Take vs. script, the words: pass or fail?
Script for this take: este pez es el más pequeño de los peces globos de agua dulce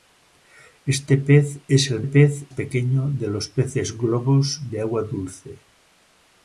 fail